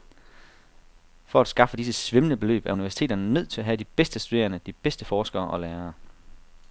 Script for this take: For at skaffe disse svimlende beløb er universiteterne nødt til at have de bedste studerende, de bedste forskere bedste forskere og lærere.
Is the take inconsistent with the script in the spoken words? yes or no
yes